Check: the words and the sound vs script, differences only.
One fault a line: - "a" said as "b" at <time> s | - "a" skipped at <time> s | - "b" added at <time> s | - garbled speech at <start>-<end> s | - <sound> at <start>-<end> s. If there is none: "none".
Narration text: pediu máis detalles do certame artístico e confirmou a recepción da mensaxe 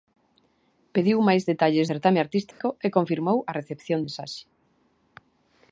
- "do" skipped at 1.9 s
- dropout at 2.5-2.6 s
- "da" skipped at 4.0 s